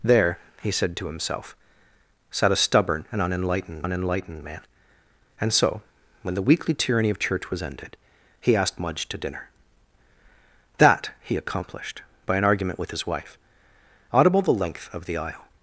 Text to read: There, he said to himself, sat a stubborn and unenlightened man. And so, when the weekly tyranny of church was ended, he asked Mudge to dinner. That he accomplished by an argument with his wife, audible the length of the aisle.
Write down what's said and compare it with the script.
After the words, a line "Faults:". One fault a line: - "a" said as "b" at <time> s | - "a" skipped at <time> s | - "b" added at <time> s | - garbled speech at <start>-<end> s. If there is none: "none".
There, he said to himself, sat a stubborn and unenlightened unenlightened man. And so, when the weekly tyranny of church was ended, he asked Mudge to dinner. That he accomplished by an argument with his wife, audible the length of the aisle.
Faults:
- "unenlightened" added at 3.8 s